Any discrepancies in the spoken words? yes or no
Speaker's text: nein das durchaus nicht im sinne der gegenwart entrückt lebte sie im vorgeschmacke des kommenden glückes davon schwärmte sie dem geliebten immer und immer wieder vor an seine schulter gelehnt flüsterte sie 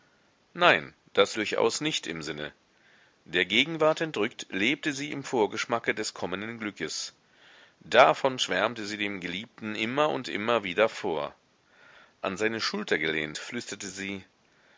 no